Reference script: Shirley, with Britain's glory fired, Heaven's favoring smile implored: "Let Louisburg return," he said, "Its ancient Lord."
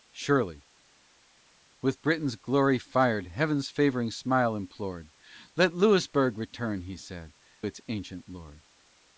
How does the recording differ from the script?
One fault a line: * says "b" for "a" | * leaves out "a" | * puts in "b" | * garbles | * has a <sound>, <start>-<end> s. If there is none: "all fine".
all fine